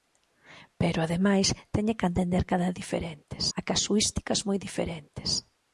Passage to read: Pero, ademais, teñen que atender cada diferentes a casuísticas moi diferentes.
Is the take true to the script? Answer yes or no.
yes